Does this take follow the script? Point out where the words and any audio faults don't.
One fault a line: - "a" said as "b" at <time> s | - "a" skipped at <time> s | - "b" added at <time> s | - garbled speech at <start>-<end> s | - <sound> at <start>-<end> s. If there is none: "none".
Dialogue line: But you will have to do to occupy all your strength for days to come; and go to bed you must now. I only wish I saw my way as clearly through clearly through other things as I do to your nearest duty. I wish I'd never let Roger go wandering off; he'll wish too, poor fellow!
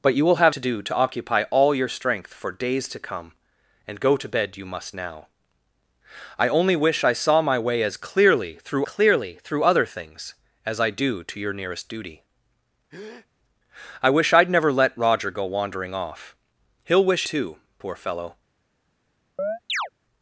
- breath at 12.9-13.3 s
- chirp at 19.4-19.9 s